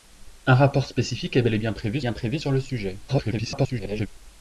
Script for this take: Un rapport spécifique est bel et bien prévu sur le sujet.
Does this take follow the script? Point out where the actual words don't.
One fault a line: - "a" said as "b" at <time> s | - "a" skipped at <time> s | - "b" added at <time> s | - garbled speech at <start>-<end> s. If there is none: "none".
- "bien prévu" added at 2.0 s
- garbled speech at 3.1-4.1 s